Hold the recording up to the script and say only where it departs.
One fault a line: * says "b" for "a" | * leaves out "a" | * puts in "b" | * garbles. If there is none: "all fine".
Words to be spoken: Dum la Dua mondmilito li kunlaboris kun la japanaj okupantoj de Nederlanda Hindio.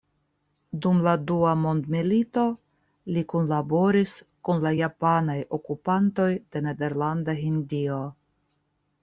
all fine